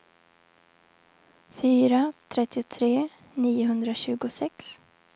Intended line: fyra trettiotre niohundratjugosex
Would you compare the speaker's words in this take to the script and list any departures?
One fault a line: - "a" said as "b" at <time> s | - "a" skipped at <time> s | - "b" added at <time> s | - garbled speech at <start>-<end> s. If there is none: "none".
none